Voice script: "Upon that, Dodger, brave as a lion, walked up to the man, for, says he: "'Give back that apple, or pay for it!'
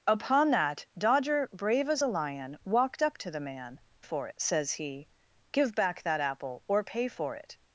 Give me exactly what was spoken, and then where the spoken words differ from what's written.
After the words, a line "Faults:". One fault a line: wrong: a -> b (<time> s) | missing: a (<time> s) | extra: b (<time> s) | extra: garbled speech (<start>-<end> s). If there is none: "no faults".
"Upon that, Dodger, brave as a lion, walked up to the man, for, says he: "'Give back that apple, or pay for it!'
Faults:
no faults